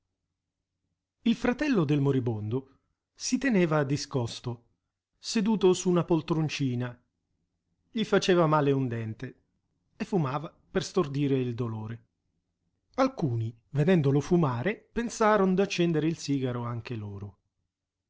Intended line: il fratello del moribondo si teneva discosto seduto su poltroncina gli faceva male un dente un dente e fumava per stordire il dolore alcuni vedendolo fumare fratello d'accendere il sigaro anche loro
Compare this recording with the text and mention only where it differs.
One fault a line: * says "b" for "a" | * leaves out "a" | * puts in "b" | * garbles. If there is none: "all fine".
* puts in "una"
* leaves out "un dente"
* says "pensaron" for "fratello"